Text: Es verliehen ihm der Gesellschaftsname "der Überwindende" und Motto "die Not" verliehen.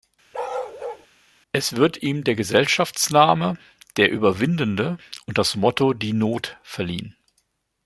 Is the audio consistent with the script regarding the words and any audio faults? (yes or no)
no